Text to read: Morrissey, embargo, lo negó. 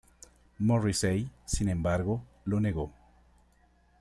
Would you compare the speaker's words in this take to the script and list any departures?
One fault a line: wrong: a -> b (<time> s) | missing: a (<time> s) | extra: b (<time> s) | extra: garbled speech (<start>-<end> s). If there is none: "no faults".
extra: sin (1.4 s)